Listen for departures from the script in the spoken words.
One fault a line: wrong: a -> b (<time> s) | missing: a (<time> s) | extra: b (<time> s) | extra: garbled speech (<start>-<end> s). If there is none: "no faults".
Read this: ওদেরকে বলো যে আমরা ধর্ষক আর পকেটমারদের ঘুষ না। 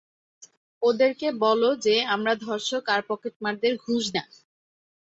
no faults